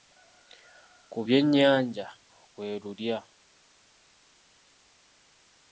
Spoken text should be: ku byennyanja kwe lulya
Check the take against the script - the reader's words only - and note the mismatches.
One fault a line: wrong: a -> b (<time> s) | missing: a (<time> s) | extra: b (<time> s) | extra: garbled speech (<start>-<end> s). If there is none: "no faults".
no faults